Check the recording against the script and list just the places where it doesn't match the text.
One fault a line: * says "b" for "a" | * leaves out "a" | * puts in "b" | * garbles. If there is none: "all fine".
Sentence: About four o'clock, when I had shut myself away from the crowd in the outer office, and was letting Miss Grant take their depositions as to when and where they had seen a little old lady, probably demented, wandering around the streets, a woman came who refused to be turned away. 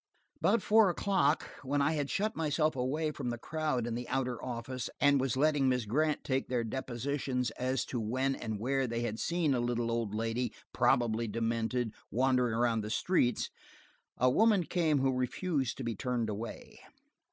all fine